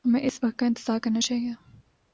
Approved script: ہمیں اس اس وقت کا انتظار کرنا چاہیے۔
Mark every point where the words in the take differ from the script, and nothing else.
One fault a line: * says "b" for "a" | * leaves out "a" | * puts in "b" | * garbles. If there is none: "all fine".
* leaves out "اس"